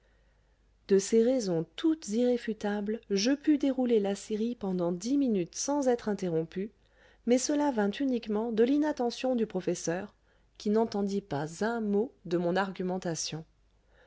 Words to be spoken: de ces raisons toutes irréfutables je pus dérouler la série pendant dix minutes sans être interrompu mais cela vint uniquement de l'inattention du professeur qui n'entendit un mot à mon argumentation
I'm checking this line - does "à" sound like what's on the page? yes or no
no